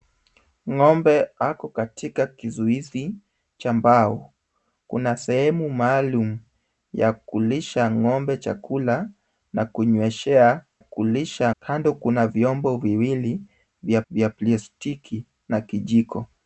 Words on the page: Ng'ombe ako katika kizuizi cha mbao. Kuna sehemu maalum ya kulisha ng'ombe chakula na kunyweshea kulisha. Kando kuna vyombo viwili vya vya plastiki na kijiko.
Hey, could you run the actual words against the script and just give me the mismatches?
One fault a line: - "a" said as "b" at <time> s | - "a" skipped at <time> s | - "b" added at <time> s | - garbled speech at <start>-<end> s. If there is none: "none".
none